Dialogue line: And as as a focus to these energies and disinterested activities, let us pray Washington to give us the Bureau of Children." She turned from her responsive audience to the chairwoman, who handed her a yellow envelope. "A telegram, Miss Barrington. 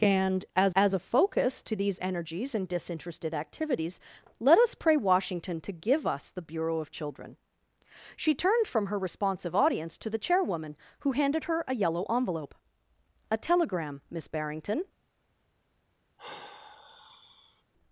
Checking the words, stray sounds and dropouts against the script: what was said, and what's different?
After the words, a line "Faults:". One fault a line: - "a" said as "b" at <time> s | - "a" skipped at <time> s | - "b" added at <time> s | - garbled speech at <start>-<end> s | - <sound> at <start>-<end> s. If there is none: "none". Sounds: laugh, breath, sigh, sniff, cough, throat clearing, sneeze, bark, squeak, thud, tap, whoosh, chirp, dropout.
And as as a focus to these energies and disinterested activities, let us pray Washington to give us the Bureau of Children." She turned from her responsive audience to the chairwoman, who handed her a yellow envelope. "A telegram, Miss Barrington.
Faults:
- sigh at 16.2-17.6 s